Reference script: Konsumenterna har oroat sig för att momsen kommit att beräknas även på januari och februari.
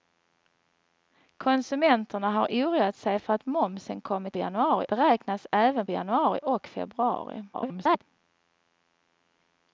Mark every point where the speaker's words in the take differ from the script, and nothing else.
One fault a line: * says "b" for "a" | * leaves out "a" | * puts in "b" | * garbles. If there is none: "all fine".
* says "januari" for "att"
* leaves out "på"
* garbles